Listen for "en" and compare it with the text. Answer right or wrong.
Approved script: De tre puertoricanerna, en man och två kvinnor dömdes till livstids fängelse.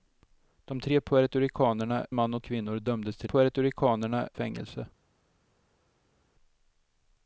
wrong